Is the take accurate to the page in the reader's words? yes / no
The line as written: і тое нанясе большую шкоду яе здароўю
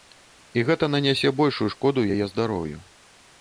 no